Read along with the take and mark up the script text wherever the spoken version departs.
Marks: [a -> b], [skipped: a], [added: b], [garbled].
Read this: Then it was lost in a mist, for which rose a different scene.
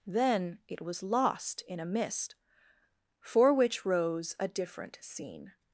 Then it was lost in a mist, for which rose a different scene.